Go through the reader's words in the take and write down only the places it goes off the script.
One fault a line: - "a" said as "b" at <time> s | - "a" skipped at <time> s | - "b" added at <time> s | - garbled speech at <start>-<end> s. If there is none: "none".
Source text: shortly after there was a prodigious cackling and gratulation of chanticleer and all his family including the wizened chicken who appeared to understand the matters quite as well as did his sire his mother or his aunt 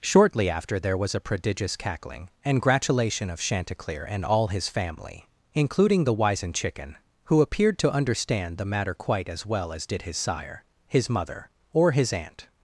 - "matters" said as "matter" at 8.7 s